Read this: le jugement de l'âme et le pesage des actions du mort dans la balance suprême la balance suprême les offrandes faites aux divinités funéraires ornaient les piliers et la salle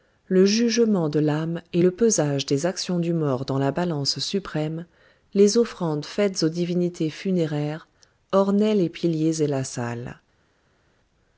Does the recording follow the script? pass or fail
fail